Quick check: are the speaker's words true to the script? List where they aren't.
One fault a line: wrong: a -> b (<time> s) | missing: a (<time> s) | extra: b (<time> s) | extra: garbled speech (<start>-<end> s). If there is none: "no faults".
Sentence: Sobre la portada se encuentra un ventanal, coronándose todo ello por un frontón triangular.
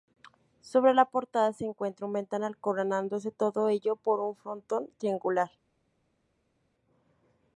no faults